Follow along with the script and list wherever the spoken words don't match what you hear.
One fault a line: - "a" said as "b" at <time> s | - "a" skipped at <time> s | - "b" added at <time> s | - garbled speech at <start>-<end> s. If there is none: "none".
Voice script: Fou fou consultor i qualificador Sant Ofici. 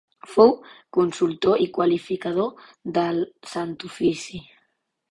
- "fou" skipped at 0.5 s
- "del" added at 3.0 s